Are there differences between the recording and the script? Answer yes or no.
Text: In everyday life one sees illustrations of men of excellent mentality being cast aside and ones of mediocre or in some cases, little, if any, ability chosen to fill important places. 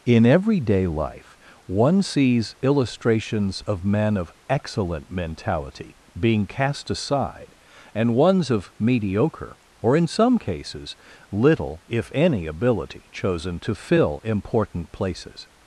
no